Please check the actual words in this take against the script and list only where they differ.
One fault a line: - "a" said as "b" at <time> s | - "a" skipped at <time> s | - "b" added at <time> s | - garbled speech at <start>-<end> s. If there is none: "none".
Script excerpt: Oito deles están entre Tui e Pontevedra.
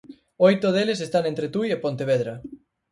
none